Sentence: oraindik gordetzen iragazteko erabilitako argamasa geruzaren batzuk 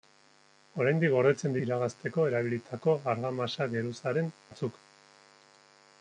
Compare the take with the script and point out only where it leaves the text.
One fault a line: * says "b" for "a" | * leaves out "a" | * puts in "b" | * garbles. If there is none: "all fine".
all fine